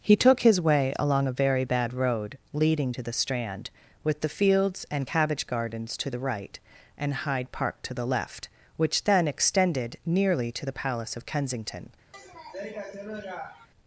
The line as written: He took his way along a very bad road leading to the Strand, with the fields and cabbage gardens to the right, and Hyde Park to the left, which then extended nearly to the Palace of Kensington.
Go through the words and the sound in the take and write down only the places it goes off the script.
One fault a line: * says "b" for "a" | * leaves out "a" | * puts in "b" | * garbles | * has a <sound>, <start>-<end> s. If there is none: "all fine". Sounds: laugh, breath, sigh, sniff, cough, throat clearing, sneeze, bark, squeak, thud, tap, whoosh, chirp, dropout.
* has a sniff, 12.1-13.7 s